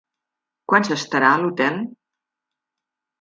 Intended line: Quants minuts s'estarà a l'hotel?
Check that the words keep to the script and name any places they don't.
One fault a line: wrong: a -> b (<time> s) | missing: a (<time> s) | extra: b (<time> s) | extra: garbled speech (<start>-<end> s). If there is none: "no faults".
missing: minuts (0.9 s)